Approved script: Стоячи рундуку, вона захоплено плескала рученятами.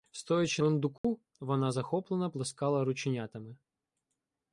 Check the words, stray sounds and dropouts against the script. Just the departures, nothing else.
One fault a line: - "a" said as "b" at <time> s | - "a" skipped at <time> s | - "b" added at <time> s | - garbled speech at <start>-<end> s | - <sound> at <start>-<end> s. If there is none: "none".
- dropout at 1.0-1.0 s